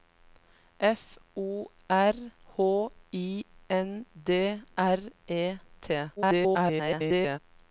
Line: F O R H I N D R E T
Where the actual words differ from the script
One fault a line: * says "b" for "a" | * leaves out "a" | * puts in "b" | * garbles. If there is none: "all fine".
* garbles